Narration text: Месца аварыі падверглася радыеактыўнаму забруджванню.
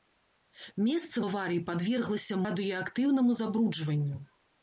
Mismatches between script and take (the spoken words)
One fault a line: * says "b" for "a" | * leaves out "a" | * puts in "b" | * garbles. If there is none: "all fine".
all fine